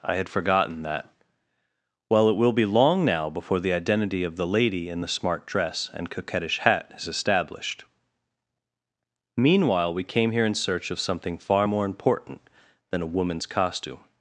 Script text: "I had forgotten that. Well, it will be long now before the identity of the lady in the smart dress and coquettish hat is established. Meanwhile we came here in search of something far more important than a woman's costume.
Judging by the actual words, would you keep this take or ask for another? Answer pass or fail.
pass